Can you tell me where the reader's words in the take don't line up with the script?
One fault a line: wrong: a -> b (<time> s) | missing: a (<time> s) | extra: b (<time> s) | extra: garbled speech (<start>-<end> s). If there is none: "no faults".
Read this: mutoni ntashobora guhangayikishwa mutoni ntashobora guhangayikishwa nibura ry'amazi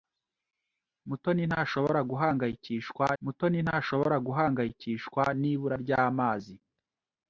no faults